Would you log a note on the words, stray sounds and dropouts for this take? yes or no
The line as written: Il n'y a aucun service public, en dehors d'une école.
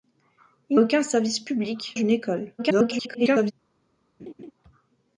yes